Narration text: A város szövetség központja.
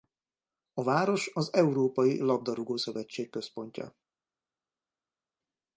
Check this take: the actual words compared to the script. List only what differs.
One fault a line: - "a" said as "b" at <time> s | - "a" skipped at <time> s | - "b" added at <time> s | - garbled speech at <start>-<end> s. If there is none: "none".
- "az Európai Labdarúgó" added at 1.3 s